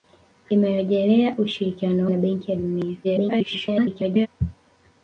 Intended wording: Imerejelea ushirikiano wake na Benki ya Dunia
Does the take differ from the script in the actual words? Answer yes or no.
yes